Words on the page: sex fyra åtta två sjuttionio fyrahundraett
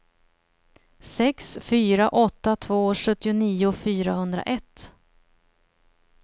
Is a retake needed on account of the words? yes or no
no